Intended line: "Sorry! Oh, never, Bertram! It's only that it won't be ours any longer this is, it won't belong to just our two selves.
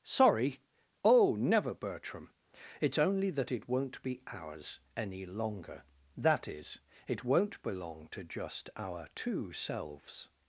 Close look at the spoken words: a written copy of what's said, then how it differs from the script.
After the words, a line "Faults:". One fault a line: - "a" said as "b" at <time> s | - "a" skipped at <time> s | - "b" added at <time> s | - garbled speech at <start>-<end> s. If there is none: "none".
"Sorry! Oh, never, Bertram! It's only that it won't be ours any longer that is, it won't belong to just our two selves.
Faults:
- "this" said as "that" at 6.2 s